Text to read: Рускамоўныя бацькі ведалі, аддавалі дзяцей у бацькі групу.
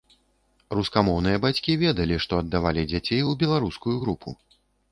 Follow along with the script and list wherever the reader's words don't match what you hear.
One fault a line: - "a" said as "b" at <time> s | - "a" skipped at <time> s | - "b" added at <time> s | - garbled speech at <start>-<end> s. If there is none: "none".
- "што" added at 2.3 s
- "бацькі" said as "беларускую" at 3.5 s